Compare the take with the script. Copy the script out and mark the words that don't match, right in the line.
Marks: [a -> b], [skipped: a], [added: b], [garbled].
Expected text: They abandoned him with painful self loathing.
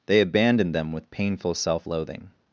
They abandoned [him -> them] with painful self loathing.